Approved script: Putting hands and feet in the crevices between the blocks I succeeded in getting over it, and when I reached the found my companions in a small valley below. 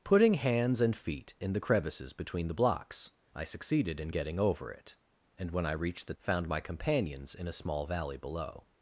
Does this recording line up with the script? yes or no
yes